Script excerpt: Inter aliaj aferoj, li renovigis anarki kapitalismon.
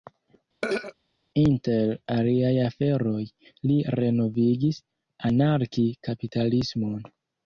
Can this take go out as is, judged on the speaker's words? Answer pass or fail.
pass